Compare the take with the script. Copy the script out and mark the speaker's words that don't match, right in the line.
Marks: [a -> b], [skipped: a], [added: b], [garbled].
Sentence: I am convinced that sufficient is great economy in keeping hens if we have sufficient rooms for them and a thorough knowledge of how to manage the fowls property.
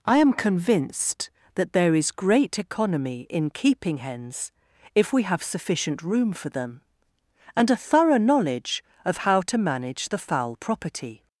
I am convinced that [sufficient -> there] is great economy in keeping hens if we have sufficient [rooms -> room] for them and a thorough knowledge of how to manage the [fowls -> fowl] property.